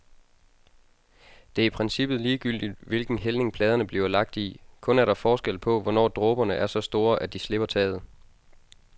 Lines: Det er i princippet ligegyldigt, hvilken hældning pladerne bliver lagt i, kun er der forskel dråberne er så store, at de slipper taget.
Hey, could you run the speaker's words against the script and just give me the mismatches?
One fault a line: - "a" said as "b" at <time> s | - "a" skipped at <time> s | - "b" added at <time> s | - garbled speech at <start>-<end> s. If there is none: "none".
- "på hvornår" added at 5.6 s